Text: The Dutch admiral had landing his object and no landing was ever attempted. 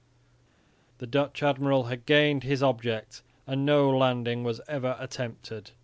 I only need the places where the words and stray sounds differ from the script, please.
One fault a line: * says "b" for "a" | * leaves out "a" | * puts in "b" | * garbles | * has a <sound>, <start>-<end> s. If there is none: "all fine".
* says "gained" for "landing"